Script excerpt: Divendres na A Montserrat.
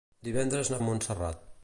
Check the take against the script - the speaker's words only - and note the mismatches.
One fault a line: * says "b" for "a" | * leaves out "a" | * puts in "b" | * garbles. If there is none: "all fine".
all fine